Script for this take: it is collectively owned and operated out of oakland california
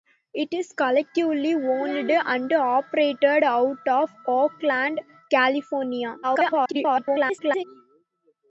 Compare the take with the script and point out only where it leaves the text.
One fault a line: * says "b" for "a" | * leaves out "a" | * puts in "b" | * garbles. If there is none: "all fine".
* garbles